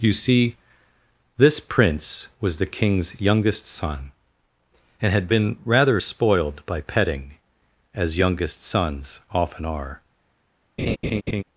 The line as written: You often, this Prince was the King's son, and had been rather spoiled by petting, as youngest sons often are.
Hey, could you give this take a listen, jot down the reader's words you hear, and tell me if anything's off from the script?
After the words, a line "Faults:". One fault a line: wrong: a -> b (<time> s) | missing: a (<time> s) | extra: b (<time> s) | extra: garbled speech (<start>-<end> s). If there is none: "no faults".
You see, this Prince was the King's youngest son, and had been rather spoiled by petting, as youngest sons often are.
Faults:
wrong: often -> see (0.1 s)
extra: youngest (3.2 s)